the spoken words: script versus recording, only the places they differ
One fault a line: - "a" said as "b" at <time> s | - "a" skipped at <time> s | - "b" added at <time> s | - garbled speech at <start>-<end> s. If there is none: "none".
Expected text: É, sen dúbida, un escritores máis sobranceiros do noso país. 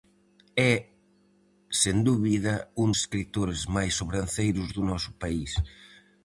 none